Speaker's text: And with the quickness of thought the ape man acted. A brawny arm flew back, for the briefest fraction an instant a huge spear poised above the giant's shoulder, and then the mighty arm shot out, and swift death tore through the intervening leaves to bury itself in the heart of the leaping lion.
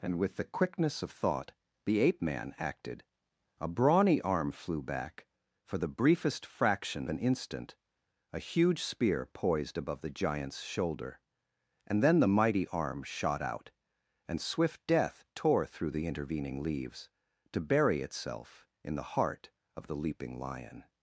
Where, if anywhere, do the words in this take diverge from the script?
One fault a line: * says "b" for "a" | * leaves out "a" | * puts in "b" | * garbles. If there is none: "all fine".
all fine